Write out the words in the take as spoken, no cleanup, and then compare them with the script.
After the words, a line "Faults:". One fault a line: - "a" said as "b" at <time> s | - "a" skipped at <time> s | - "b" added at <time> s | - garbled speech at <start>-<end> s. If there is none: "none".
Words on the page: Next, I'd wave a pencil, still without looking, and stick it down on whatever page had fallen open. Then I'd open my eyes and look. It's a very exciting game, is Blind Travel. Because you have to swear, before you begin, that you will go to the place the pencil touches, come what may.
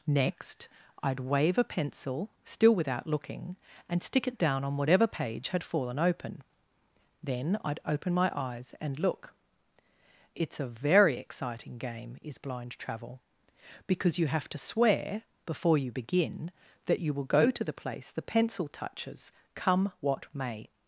Next, I'd wave a pencil, still without looking, and stick it down on whatever page had fallen open. Then I'd open my eyes and look. It's a very exciting game, is Blind Travel. Because you have to swear, before you begin, that you will go to the place the pencil touches, come what may.
Faults:
none